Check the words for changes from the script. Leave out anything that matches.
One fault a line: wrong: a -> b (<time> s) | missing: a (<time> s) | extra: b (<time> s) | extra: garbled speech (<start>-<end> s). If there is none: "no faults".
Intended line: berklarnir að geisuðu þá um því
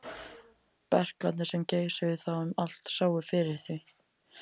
wrong: að -> sem (1.5 s)
extra: allt sáu fyrir (2.7 s)